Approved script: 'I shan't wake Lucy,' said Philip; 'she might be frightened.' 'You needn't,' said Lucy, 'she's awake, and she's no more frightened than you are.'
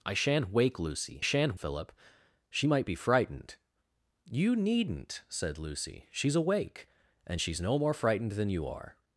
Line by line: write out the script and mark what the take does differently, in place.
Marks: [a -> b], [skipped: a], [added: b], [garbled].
'I shan't wake Lucy,' [said -> shan't] Philip; 'she might be frightened.' 'You needn't,' said Lucy, 'she's awake, and she's no more frightened than you are.'